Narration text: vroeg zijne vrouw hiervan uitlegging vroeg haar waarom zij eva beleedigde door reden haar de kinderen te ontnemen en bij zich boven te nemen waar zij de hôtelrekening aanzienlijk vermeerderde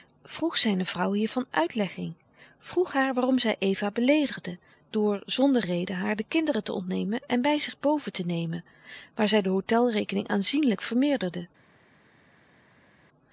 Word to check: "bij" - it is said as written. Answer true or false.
true